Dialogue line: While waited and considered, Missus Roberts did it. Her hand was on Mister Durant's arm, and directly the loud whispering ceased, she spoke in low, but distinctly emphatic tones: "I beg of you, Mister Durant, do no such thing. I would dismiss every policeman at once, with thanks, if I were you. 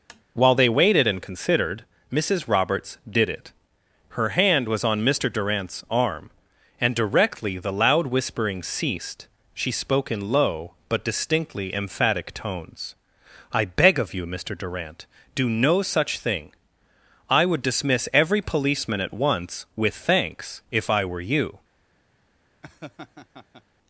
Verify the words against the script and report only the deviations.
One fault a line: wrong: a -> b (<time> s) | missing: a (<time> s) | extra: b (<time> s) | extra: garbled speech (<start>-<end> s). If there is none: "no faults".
extra: they (0.5 s)